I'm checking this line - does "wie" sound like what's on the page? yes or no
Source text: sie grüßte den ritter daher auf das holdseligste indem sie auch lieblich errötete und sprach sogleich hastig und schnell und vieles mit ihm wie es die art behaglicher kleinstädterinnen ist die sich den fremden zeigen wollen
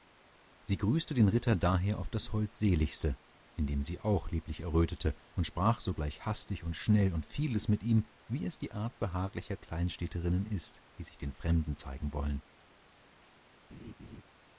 yes